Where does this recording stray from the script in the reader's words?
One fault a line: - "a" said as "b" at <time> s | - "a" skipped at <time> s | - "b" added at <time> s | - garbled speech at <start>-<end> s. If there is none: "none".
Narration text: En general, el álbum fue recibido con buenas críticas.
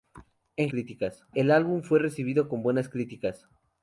- "general" said as "críticas" at 0.7 s